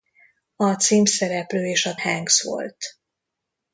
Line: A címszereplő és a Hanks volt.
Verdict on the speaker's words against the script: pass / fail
pass